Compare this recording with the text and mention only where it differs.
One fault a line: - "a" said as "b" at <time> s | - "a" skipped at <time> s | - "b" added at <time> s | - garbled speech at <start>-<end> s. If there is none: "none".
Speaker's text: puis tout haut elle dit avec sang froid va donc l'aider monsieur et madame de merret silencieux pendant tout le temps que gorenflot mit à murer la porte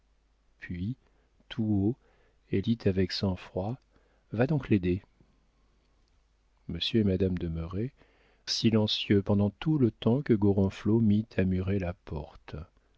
none